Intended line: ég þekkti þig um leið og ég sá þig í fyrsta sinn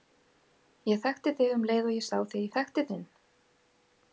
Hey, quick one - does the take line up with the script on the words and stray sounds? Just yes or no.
no